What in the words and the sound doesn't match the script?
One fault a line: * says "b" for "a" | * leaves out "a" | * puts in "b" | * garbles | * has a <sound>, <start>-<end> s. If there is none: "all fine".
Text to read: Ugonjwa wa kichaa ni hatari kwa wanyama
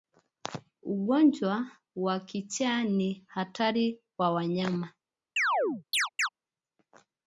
* has a chirp, 5.4-6.3 s